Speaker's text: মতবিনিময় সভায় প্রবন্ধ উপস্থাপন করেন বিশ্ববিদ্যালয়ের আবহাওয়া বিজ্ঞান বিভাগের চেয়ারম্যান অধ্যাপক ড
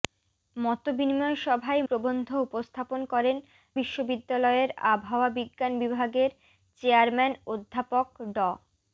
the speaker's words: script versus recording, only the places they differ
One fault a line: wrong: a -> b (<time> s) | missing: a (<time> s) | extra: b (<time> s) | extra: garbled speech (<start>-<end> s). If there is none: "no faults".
no faults